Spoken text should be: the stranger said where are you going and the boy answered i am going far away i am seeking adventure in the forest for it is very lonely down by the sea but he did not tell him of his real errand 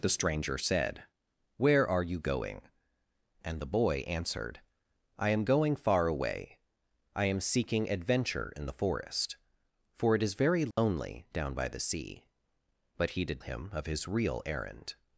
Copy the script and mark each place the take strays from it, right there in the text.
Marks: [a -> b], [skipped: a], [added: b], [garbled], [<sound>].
the stranger said where are you going and the boy answered i am going far away i am seeking adventure in the forest for it is very lonely [dropout] down by the sea but he did [skipped: not tell] him of his real errand